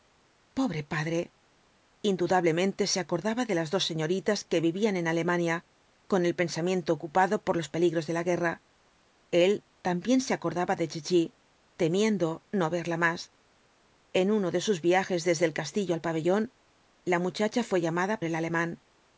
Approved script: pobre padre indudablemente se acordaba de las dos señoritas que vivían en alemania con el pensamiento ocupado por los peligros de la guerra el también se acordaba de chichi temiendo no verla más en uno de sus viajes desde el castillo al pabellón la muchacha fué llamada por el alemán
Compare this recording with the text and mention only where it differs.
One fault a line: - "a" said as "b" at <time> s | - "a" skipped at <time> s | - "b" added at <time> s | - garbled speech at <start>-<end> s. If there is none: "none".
- "por" skipped at 18.2 s